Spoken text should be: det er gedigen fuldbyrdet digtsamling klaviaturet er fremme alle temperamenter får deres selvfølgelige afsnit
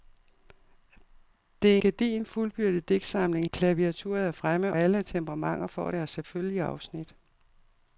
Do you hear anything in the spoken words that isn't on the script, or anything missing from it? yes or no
no